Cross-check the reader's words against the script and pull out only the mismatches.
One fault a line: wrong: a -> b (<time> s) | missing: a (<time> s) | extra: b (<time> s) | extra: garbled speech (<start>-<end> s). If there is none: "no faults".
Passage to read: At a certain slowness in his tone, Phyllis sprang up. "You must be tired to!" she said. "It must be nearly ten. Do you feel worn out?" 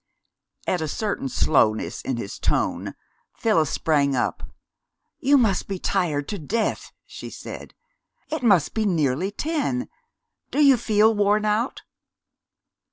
extra: death (6.4 s)